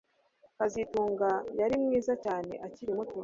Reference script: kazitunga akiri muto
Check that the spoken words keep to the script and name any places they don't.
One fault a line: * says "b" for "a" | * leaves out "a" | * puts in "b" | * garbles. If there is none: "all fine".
* puts in "yari mwiza cyane"